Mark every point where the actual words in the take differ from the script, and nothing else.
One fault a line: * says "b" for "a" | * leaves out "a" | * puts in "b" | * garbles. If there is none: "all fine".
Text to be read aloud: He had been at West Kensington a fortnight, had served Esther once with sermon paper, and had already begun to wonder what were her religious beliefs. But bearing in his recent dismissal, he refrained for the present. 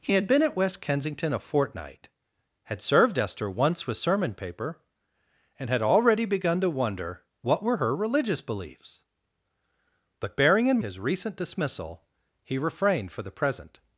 all fine